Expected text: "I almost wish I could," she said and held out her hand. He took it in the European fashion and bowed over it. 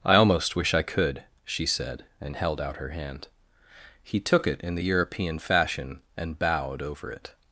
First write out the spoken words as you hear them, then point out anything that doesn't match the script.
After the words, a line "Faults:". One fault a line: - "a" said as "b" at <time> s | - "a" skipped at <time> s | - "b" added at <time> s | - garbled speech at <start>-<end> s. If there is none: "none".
"I almost wish I could," she said and held out her hand. He took it in the European fashion and bowed over it.
Faults:
none